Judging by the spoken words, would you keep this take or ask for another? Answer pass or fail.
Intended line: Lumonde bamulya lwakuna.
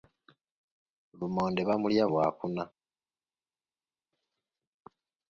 pass